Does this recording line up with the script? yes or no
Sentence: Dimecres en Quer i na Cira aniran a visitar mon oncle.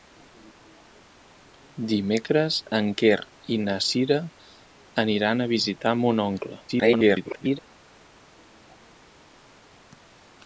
no